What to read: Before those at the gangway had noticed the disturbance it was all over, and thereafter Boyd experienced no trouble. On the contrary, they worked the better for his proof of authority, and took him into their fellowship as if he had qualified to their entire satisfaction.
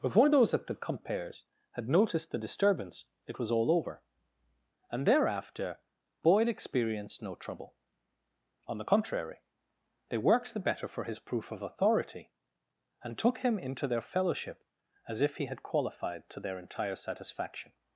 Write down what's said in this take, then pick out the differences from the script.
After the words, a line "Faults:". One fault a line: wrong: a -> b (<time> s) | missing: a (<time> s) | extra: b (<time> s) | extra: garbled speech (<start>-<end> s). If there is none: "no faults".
Before those at the compares had noticed the disturbance it was all over, and thereafter Boyd experienced no trouble. On the contrary, they worked the better for his proof of authority, and took him into their fellowship as if he had qualified to their entire satisfaction.
Faults:
wrong: gangway -> compares (0.7 s)